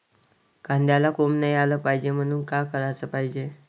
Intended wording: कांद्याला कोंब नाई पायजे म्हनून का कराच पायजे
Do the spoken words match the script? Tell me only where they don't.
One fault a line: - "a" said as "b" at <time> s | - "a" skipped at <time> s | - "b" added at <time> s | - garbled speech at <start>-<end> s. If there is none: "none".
- "आलं" added at 1.5 s